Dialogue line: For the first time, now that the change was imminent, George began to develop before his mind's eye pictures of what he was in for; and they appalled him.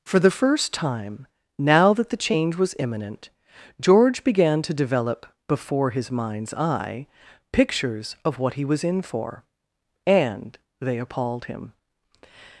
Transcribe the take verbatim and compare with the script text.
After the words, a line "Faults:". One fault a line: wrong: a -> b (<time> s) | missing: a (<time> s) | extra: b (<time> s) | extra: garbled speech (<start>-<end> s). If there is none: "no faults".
For the first time, now that the change was imminent, George began to develop before his mind's eye pictures of what he was in for; and they appalled him.
Faults:
no faults